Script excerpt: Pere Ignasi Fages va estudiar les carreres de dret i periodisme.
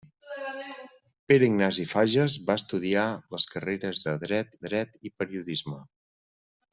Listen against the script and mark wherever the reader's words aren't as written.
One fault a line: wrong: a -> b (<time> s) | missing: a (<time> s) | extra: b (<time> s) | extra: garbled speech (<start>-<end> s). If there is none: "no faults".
extra: dret (4.7 s)